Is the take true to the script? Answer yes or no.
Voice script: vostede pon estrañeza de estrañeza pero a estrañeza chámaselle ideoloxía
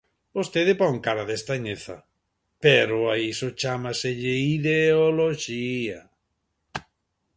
no